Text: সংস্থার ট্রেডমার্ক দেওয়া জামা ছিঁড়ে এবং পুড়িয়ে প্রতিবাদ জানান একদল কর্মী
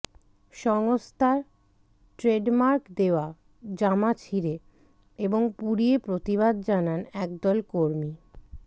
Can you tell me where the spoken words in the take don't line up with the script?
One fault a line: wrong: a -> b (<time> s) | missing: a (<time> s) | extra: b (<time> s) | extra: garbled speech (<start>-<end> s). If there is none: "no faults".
no faults